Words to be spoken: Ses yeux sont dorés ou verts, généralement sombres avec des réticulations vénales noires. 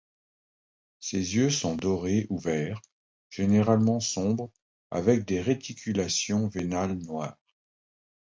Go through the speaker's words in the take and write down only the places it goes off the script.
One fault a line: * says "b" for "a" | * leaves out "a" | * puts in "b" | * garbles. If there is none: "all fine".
all fine